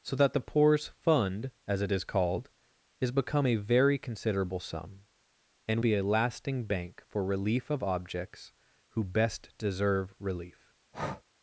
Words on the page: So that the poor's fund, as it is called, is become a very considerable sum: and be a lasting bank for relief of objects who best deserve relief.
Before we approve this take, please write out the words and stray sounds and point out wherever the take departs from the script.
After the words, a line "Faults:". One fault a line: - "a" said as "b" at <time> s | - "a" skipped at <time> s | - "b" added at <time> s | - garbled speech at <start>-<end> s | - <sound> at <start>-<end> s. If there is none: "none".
So that the poor's fund, as it is called, is become a very considerable sum: and be a lasting bank for relief of objects who best deserve relief.
Faults:
- breath at 10.9-11.2 s